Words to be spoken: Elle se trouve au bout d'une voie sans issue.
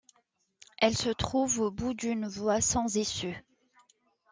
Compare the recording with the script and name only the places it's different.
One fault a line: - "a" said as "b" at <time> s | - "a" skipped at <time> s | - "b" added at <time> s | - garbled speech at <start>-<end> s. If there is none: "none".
none